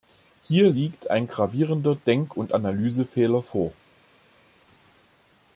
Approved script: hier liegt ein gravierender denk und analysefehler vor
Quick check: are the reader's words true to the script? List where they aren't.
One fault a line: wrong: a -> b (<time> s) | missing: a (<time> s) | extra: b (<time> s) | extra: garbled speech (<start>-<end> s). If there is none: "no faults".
no faults